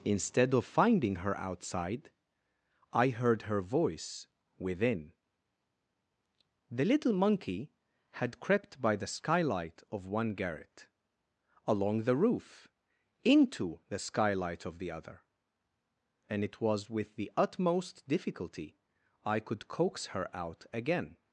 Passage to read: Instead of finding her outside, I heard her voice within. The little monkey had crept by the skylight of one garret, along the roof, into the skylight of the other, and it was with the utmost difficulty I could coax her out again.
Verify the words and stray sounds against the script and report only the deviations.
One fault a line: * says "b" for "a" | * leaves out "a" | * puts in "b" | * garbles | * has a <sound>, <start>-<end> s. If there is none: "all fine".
all fine